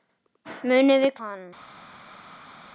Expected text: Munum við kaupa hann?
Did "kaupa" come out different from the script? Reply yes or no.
yes